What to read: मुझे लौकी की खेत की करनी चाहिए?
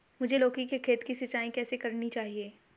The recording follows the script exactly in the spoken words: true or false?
false